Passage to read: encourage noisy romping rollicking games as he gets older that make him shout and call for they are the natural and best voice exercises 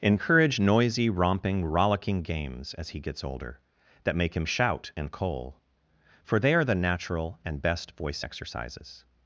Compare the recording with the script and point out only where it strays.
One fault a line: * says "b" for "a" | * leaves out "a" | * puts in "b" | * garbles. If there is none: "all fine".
* says "coal" for "call"